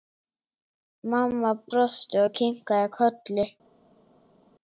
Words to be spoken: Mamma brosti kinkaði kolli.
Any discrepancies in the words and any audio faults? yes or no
yes